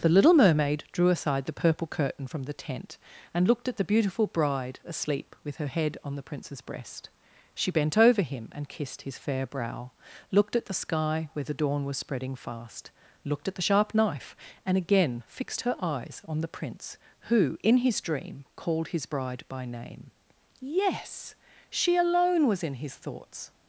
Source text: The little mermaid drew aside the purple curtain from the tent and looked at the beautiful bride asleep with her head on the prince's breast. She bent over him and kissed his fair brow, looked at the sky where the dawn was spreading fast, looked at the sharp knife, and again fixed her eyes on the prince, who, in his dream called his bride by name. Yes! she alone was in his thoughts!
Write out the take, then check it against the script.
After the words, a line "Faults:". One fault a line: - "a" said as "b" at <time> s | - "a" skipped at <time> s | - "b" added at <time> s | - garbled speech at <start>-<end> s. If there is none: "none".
The little mermaid drew aside the purple curtain from the tent and looked at the beautiful bride asleep with her head on the prince's breast. She bent over him and kissed his fair brow, looked at the sky where the dawn was spreading fast, looked at the sharp knife, and again fixed her eyes on the prince, who, in his dream called his bride by name. Yes! she alone was in his thoughts!
Faults:
none